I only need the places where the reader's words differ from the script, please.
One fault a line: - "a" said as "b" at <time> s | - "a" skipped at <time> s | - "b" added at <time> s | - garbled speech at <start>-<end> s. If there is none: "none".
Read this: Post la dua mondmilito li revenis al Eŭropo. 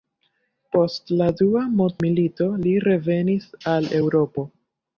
none